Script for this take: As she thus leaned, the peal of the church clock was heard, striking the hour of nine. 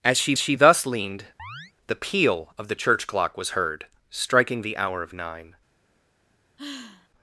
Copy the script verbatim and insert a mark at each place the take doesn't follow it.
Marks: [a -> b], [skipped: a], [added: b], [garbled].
As she [added: she] thus leaned, the peal of the church clock was heard, striking the hour of nine.